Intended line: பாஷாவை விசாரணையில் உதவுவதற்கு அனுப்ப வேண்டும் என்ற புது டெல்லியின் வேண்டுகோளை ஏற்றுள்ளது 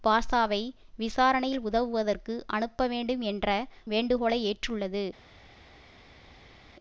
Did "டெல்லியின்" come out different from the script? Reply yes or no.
yes